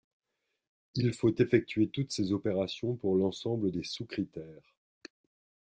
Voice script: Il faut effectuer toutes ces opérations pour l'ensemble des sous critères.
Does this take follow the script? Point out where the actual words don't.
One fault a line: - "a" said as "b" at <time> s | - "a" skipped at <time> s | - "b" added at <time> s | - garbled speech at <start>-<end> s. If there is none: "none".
none